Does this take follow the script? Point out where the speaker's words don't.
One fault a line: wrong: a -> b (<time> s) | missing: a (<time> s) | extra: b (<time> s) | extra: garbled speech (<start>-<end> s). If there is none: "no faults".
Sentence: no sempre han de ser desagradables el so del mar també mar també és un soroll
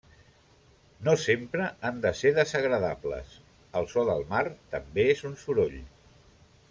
missing: mar també (5.1 s)